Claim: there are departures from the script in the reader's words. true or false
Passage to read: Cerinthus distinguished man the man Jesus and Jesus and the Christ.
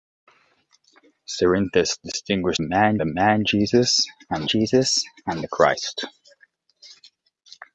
false